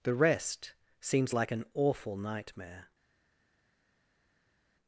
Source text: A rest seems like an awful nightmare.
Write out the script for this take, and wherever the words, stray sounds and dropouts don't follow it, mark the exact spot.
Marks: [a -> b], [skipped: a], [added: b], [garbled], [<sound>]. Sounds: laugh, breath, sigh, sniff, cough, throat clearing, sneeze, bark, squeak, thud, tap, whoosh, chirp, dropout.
[A -> The] rest seems like an awful nightmare.